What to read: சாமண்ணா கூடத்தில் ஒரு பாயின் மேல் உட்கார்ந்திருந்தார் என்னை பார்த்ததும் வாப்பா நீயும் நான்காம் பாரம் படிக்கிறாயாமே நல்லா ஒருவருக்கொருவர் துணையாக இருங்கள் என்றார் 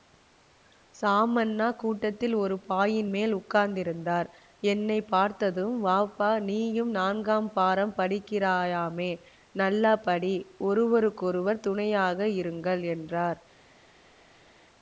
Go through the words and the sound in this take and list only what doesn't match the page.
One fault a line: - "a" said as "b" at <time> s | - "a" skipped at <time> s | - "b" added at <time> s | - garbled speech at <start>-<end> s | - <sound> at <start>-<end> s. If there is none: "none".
- "படி" added at 10.0 s